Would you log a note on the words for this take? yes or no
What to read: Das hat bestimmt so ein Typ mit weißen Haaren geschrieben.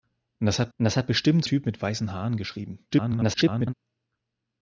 yes